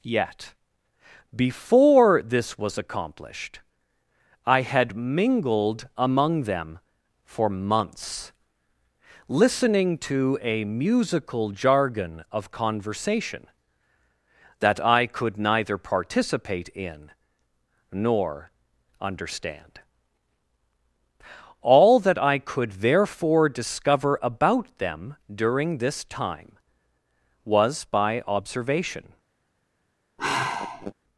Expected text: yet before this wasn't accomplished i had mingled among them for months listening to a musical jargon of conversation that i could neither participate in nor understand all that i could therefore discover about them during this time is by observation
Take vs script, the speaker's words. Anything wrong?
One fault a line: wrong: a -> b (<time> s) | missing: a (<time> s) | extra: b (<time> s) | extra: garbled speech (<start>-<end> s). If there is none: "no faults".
wrong: wasn't -> was (2.6 s)
wrong: is -> was (27.4 s)